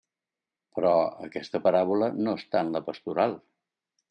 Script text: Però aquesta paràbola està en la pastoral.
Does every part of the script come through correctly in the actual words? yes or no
no